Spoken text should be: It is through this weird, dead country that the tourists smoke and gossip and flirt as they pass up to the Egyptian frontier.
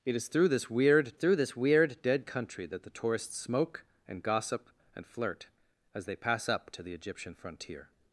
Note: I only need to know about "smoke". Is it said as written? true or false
true